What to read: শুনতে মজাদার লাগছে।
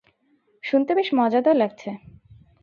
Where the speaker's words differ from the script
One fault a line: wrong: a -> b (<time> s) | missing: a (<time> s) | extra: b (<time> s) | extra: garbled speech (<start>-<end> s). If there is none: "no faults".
extra: বেশ (0.9 s)